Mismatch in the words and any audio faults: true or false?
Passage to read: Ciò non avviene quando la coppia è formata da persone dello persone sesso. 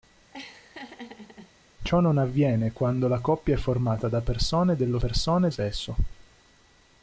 true